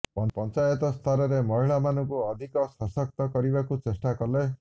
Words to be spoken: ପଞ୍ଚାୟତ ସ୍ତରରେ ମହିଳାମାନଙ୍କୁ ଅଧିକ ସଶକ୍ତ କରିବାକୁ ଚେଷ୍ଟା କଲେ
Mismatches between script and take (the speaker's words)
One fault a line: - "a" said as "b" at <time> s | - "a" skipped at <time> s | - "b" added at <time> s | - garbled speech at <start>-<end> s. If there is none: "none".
none